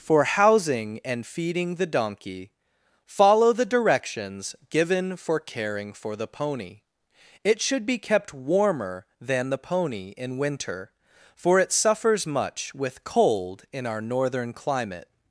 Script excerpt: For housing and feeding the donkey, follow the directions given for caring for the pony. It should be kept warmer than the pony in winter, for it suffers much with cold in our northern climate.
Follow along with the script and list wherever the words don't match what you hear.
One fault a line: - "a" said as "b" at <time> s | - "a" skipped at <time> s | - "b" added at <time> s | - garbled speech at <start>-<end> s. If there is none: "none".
none